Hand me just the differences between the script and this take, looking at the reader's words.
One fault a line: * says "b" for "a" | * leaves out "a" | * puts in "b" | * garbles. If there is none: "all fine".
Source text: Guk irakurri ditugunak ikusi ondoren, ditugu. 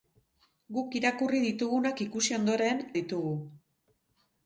all fine